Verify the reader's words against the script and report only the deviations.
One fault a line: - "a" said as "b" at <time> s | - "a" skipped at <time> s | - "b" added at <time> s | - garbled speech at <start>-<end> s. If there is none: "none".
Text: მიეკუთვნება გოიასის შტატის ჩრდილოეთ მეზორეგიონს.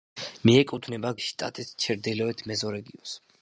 - "გოიასის" skipped at 1.1 s